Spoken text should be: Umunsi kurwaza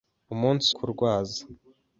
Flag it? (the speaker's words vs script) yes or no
no